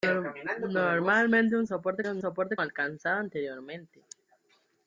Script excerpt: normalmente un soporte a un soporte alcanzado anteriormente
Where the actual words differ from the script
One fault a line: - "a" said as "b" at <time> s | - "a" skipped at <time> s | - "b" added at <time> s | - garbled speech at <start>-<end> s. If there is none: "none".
none